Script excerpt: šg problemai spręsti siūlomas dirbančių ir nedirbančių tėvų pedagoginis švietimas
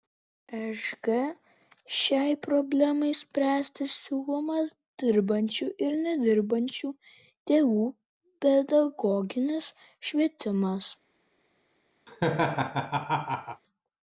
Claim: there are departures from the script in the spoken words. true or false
true